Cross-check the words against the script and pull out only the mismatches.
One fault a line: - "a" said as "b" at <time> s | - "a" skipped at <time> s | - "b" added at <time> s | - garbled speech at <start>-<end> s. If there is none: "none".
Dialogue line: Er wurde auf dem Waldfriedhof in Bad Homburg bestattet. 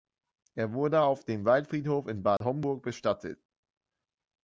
none